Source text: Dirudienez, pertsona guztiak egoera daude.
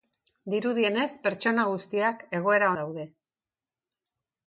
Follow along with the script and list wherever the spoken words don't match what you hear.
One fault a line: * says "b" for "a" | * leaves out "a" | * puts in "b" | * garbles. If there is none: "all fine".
all fine